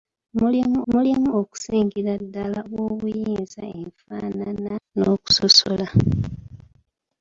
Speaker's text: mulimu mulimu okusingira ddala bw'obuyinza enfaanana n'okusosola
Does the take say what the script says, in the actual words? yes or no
yes